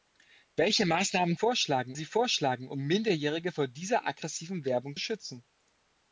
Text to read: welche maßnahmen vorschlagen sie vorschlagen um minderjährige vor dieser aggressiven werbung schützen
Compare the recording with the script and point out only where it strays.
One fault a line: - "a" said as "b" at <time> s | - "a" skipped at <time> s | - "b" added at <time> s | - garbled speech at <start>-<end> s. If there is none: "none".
none